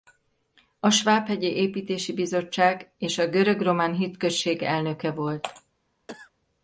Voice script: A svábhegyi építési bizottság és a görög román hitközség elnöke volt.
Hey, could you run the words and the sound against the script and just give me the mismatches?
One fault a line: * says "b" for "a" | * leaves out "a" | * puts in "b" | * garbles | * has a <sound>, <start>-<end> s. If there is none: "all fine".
* has a cough, 6.1-6.3 s